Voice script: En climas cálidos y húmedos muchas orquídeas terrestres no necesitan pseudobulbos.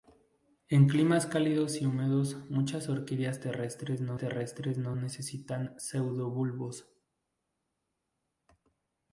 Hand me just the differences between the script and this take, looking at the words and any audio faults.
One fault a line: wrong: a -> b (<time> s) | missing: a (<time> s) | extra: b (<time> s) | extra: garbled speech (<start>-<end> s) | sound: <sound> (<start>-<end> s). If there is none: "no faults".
extra: terrestres no (4.2 s)